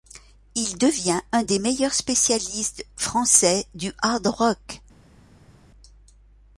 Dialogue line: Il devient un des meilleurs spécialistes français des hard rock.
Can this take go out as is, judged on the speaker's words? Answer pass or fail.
fail